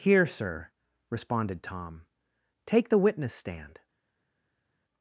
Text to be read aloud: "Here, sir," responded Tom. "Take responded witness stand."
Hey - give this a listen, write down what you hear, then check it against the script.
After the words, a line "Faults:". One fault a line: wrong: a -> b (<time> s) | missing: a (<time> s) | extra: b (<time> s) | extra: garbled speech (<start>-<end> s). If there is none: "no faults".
"Here, sir," responded Tom. "Take the witness stand."
Faults:
wrong: responded -> the (2.9 s)